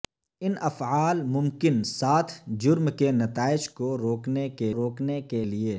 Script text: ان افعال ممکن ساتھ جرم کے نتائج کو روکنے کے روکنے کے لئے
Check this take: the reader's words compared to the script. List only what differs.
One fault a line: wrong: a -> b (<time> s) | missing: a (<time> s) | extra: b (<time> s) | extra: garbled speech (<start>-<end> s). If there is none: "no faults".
no faults